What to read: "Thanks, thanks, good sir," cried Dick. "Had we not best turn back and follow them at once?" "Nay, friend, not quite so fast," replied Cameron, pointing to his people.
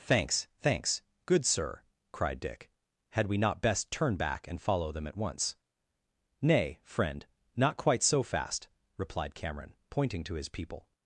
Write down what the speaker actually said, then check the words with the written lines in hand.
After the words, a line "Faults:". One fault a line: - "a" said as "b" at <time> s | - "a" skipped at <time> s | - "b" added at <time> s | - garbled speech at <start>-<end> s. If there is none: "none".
"Thanks, thanks, good sir," cried Dick. "Had we not best turn back and follow them at once?" "Nay, friend, not quite so fast," replied Cameron, pointing to his people.
Faults:
none